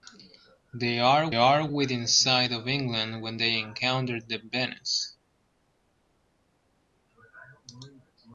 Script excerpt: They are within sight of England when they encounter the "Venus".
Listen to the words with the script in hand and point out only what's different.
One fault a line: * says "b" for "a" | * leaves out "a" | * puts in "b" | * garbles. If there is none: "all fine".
* puts in "are"